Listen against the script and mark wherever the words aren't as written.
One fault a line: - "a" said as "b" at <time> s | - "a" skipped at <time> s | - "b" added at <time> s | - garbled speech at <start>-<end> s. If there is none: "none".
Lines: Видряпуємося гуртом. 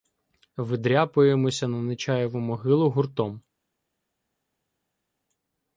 - "на Нечаєву могилу" added at 1.7 s